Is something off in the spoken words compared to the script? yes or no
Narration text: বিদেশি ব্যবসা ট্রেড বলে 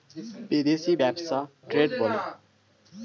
no